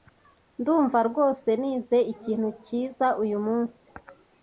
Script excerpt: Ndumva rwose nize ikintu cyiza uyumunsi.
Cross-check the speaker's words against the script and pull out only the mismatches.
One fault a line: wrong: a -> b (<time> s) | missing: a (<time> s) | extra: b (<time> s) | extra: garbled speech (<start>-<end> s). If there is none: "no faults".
no faults